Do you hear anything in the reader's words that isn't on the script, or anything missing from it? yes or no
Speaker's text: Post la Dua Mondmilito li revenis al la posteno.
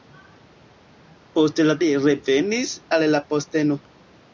yes